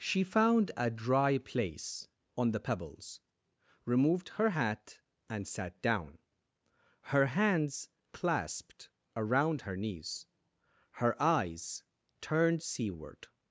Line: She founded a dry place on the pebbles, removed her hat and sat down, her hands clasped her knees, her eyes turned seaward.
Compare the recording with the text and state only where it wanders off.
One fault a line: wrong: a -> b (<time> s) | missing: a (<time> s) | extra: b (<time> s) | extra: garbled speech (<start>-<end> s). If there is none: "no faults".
wrong: founded -> found (0.2 s)
extra: around (9.2 s)